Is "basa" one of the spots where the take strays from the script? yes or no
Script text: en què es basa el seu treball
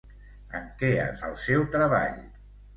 yes